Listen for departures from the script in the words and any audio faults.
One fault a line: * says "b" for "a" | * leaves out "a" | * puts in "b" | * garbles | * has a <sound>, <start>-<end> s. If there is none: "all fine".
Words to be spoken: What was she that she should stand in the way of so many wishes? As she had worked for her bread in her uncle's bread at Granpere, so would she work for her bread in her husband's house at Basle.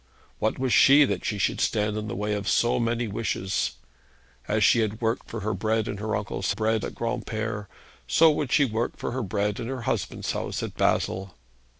all fine